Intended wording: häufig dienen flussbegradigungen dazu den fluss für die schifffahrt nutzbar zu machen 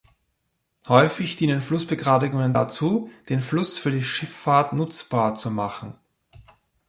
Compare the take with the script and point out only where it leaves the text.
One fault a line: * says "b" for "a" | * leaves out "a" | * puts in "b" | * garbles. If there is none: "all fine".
all fine